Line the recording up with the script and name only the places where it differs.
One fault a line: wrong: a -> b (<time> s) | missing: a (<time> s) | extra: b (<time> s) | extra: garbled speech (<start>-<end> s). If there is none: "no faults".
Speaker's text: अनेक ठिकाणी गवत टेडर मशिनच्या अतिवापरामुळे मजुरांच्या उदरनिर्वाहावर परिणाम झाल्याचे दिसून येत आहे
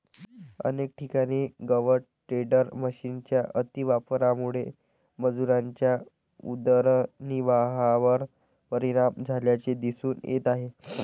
no faults